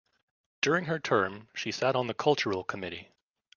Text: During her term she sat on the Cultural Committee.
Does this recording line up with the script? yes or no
yes